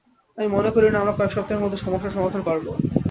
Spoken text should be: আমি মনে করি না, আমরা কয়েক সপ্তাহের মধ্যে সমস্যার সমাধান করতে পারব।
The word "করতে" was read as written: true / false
false